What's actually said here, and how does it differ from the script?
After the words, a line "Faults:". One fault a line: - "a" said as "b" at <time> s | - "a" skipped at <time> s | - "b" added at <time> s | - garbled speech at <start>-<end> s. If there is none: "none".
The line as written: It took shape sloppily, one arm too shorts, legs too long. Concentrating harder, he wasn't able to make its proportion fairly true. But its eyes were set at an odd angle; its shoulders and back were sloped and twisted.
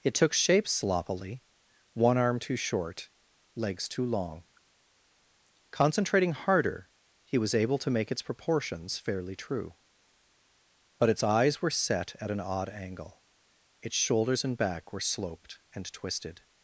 It took shape sloppily, one arm too short, legs too long. Concentrating harder, he was able to make its proportions fairly true. But its eyes were set at an odd angle; its shoulders and back were sloped and twisted.
Faults:
- "shorts" said as "short" at 2.5 s
- "wasn't" said as "was" at 7.4 s
- "proportion" said as "proportions" at 8.2 s